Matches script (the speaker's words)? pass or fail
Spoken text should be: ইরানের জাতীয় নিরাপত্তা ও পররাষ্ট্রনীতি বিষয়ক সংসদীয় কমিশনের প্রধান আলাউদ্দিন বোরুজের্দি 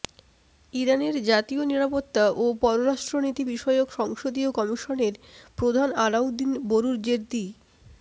pass